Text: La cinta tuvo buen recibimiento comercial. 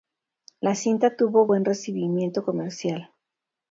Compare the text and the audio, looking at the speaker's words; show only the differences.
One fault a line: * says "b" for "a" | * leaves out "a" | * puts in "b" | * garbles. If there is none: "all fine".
all fine